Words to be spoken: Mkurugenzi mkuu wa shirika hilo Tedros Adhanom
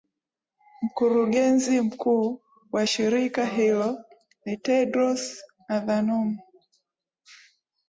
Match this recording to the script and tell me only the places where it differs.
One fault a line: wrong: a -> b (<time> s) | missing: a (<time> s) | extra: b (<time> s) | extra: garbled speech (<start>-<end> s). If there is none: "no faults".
extra: ni (4.5 s)